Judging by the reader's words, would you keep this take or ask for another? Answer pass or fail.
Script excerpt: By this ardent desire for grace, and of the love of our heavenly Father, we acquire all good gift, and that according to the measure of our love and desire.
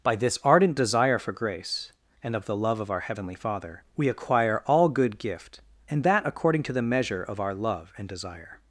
pass